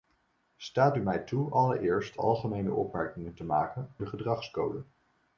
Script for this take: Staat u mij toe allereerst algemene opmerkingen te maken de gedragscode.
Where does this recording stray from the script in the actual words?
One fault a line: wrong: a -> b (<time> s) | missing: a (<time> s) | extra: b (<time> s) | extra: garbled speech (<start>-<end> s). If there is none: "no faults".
no faults